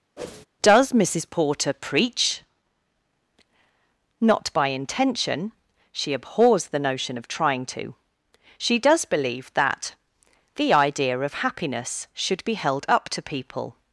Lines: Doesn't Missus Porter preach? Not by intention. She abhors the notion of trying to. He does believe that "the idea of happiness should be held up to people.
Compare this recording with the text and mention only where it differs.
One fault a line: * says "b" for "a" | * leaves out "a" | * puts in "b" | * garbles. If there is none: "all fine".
* says "Does" for "Doesn't"
* says "She" for "He"